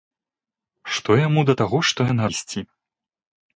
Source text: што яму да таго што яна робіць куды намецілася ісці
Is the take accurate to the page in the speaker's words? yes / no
no